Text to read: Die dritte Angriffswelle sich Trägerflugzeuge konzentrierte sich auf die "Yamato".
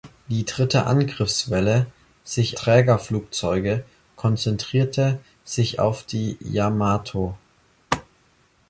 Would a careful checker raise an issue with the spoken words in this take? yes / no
no